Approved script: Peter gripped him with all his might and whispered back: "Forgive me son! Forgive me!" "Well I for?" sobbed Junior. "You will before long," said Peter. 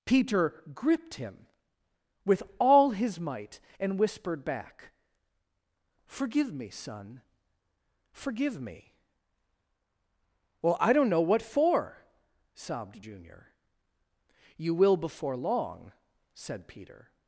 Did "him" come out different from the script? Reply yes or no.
no